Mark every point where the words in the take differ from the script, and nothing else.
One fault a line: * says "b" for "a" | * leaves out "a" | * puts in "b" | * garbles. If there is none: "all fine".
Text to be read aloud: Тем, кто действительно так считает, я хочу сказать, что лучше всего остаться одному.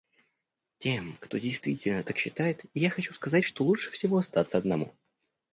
all fine